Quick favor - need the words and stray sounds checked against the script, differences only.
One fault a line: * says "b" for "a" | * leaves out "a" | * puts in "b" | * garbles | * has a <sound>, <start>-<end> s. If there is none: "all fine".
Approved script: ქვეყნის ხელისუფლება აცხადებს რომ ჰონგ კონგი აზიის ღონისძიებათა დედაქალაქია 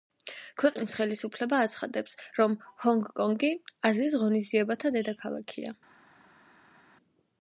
all fine